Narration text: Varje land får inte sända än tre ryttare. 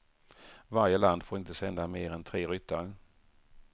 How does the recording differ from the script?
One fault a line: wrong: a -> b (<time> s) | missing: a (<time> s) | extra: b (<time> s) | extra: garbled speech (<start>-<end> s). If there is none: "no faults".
extra: mer (1.9 s)